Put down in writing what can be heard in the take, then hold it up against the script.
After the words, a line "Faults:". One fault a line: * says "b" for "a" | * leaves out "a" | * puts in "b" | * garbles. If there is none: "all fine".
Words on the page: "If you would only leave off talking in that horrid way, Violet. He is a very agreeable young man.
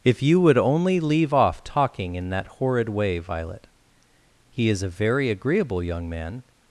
"If you would only leave off talking in that horrid way, Violet. He is a very agreeable young man.
Faults:
all fine